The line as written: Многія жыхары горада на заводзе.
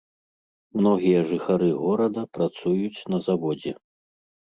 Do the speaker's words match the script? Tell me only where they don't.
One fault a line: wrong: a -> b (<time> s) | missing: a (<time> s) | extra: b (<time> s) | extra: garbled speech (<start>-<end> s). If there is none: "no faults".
extra: працуюць (2.4 s)